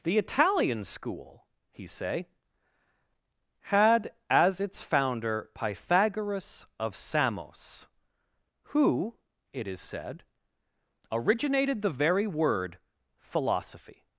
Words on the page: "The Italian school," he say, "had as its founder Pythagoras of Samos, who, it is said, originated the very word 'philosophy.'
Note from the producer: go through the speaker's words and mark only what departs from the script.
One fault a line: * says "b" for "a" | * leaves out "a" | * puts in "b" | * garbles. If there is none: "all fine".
all fine